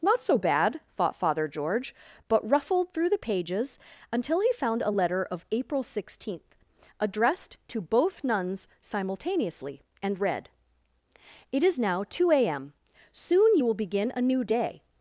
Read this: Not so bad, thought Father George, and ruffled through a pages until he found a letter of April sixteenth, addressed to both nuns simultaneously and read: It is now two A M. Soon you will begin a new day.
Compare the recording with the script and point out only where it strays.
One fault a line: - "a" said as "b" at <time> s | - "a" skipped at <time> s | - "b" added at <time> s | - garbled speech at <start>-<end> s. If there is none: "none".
- "and" said as "but" at 2.3 s
- "a" said as "the" at 3.1 s